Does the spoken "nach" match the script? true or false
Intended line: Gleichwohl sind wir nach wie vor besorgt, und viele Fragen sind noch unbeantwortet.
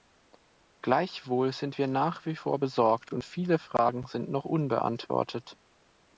true